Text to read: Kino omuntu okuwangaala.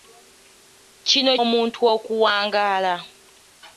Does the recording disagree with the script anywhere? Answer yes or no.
no